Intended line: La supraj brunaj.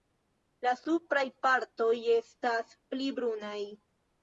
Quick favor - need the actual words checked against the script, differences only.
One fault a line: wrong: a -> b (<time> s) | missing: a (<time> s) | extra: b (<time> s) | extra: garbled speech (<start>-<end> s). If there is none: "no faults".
extra: partoj estas pli (1.5 s)